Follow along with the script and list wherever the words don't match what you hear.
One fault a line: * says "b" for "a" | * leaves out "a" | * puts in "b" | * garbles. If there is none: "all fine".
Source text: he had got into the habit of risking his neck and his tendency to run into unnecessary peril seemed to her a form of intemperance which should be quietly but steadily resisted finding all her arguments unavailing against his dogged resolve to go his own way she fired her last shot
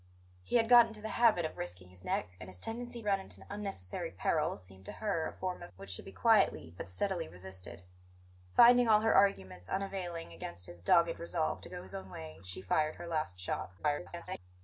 * leaves out "to"
* leaves out "intemperance"
* garbles